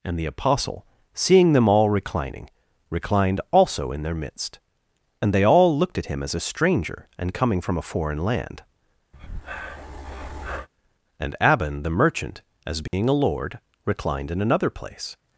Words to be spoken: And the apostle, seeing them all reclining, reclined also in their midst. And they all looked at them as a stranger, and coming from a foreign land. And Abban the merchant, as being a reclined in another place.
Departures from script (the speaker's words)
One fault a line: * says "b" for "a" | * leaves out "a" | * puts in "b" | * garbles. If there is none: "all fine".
* says "him" for "them"
* puts in "lord"